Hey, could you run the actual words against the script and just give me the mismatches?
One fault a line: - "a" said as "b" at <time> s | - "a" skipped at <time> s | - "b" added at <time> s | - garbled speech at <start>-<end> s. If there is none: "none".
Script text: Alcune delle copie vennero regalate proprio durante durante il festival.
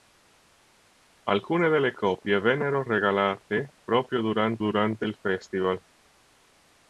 none